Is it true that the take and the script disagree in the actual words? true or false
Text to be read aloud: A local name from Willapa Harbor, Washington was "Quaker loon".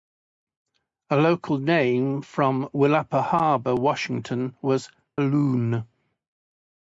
true